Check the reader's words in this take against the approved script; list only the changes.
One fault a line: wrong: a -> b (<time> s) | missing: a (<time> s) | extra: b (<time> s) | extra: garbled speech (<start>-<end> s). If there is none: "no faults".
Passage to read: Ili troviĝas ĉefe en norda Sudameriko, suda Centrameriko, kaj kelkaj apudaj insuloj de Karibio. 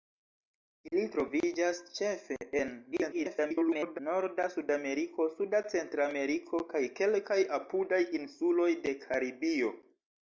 extra: garbled speech (2.9-4.0 s)